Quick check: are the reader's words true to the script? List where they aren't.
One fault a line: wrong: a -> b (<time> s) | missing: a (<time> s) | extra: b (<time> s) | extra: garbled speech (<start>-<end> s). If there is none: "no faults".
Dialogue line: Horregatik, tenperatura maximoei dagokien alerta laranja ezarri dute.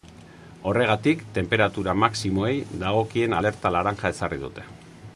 no faults